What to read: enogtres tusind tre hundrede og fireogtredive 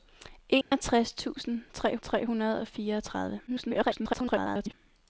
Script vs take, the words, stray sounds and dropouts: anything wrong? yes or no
yes